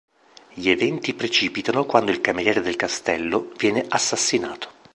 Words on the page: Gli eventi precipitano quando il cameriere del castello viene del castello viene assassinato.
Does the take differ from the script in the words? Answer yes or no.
yes